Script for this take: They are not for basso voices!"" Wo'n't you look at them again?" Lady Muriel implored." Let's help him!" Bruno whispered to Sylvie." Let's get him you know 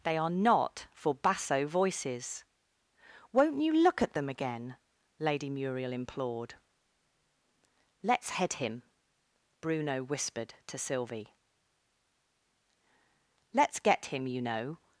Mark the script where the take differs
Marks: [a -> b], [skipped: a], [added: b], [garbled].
They are not for basso voices!"" Wo'n't you look at them again?" Lady Muriel implored." Let's [help -> head] him!" Bruno whispered to Sylvie." Let's get him you know